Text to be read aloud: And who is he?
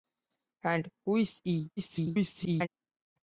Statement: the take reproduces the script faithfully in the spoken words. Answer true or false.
false